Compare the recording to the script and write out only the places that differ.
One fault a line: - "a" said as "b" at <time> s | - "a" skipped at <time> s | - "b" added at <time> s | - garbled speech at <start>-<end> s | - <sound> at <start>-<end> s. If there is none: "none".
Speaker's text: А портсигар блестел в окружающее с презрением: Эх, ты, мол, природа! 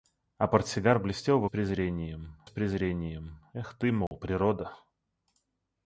- "окружающее" said as "презрением" at 1.5 s
- dropout at 4.1-4.1 s